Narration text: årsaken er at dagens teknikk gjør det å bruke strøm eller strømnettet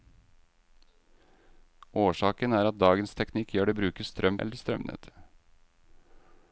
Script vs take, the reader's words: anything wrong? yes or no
no